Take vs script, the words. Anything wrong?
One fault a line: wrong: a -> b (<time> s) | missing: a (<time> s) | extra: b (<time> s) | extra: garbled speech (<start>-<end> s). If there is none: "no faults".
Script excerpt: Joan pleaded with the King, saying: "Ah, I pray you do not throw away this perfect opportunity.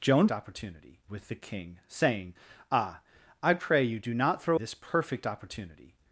wrong: pleaded -> opportunity (0.3 s)
missing: away (4.6 s)